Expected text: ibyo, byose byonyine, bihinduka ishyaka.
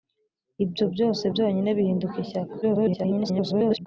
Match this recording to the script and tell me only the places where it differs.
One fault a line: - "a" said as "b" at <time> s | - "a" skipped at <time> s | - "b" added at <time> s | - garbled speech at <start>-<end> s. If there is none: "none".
- garbled speech at 2.6-3.9 s